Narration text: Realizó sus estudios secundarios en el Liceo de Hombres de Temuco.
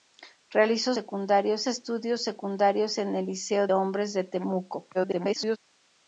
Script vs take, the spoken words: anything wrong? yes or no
yes